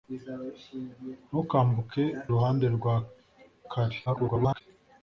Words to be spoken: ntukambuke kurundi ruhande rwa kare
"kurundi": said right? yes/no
no